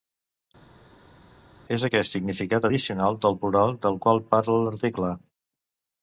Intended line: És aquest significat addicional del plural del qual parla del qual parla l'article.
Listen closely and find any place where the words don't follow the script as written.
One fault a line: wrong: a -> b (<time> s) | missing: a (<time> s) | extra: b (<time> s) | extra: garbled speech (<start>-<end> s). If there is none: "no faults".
missing: del qual parla (4.6 s)